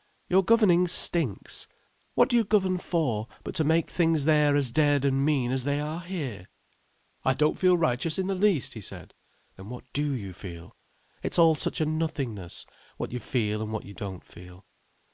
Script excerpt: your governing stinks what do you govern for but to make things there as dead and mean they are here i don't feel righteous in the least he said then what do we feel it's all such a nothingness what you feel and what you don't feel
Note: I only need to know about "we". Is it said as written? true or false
false